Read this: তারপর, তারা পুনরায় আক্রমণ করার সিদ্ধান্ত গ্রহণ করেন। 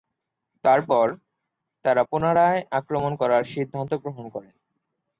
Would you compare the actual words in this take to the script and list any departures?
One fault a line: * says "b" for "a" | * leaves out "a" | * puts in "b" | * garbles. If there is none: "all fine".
all fine